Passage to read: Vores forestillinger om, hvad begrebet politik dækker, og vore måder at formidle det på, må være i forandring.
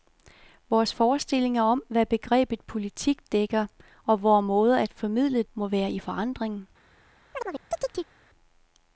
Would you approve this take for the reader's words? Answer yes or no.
no